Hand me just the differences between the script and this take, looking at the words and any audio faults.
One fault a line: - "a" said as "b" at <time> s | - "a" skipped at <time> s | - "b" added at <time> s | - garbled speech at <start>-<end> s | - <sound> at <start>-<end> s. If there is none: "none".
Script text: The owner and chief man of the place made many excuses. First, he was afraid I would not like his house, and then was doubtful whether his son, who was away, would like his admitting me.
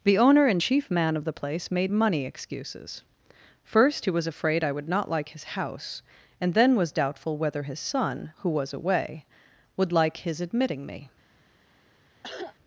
- "many" said as "money" at 1.9 s
- cough at 12.2-12.6 s